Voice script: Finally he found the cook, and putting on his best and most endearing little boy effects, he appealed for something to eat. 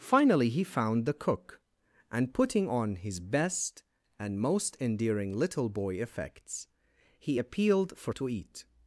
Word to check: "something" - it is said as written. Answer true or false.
false